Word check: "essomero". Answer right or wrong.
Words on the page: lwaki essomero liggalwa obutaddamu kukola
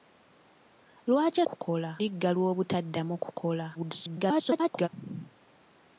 wrong